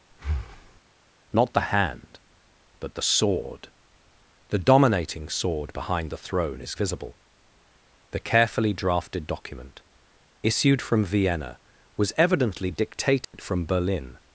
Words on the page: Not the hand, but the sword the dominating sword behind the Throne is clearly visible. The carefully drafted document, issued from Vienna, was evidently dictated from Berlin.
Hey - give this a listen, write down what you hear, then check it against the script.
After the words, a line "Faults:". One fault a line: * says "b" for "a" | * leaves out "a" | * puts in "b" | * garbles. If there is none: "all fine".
Not the hand, but the sword the dominating sword behind the Throne is visible. The carefully drafted document, issued from Vienna, was evidently dictated from Berlin.
Faults:
* leaves out "clearly"